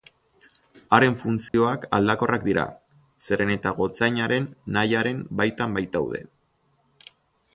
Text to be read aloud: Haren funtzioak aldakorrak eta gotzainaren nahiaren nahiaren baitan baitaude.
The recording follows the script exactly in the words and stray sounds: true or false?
false